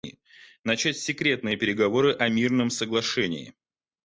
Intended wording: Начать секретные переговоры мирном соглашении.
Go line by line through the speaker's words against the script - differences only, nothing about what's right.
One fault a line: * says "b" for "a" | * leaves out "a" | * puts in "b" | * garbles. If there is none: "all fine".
* puts in "о"